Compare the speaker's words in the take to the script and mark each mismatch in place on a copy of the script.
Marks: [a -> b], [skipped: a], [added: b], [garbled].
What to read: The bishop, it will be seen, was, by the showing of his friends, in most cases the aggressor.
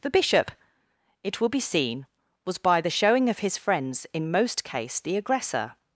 The bishop, it will be seen, was, by the showing of his friends, in most [cases -> case] the aggressor.